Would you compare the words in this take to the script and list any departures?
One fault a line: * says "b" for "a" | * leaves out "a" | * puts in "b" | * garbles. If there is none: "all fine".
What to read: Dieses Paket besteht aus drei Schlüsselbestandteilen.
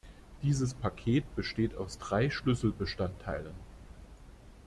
all fine